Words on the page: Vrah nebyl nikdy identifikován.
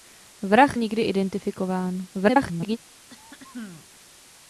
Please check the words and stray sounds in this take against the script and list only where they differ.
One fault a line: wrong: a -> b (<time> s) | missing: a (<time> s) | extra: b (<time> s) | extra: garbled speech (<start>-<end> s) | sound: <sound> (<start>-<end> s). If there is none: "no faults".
missing: nebyl (0.8 s)
extra: garbled speech (2.1-2.8 s)
sound: throat clearing (3.1-3.9 s)